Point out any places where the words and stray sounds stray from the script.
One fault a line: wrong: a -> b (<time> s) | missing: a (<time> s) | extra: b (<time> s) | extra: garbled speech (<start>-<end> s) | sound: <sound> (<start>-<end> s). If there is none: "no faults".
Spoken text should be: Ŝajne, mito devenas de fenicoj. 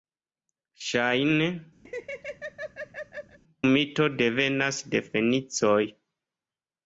sound: laugh (1.9-3.4 s)